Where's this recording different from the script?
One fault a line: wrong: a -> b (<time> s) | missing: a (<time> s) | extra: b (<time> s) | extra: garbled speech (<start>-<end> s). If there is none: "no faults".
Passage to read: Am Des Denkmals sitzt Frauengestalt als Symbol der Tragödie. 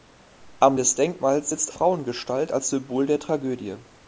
no faults